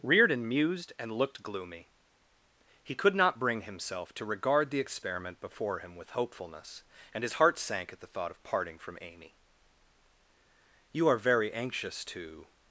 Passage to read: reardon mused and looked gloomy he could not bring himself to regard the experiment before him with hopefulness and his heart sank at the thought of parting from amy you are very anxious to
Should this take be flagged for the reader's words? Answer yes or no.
no